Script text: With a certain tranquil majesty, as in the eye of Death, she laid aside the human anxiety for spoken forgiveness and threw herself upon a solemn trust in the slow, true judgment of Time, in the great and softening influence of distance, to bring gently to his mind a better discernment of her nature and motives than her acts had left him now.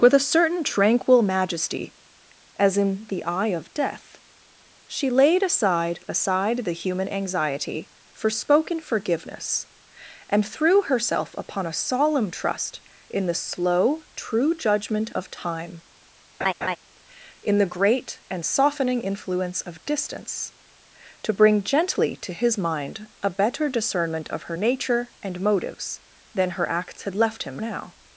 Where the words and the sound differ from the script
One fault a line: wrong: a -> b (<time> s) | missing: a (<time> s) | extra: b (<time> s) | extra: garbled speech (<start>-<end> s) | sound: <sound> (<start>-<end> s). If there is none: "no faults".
extra: aside (6.1 s)
sound: laugh (16.4-16.8 s)